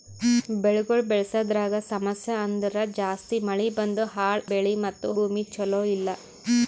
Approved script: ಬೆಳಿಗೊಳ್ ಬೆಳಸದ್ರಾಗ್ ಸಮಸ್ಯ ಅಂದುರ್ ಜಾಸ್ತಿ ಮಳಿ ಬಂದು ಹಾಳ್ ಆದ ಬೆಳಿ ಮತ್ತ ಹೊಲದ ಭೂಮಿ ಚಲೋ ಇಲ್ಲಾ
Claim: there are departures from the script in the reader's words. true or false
true